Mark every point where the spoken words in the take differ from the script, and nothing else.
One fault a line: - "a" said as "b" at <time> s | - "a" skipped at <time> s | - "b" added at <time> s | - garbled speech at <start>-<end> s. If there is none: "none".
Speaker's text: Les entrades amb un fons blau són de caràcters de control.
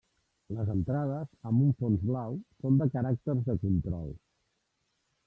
none